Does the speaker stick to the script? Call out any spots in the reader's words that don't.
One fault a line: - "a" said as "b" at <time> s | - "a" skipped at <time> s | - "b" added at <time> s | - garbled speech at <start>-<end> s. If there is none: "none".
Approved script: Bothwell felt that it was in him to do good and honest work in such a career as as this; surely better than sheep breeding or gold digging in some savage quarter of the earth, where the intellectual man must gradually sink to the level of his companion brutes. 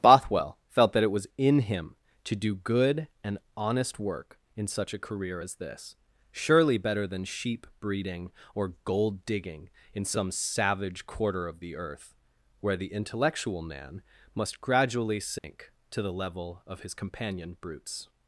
- "as" skipped at 5.5 s